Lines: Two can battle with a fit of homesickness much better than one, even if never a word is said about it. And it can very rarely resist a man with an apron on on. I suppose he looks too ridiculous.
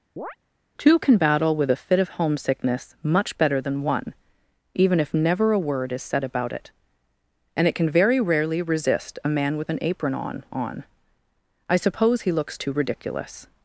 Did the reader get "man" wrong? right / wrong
right